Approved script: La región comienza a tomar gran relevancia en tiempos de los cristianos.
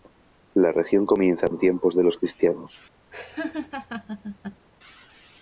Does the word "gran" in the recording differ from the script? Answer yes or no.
yes